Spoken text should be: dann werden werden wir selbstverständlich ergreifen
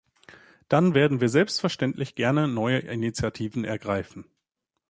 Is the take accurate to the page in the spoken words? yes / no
no